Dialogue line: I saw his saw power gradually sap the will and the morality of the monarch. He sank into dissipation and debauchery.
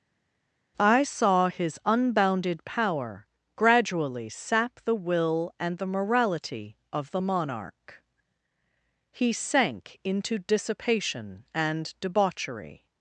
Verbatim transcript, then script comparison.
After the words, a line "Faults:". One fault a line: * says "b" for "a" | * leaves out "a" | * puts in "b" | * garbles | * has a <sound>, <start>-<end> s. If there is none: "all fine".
I saw his unbounded power gradually sap the will and the morality of the monarch. He sank into dissipation and debauchery.
Faults:
* says "unbounded" for "saw"